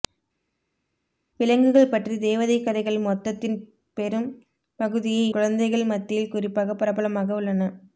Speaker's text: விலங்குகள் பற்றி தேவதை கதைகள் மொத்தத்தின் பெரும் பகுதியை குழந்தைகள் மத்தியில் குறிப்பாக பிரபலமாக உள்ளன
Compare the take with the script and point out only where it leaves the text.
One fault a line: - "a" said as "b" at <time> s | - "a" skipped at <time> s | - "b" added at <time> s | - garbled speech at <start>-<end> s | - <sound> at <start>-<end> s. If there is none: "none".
none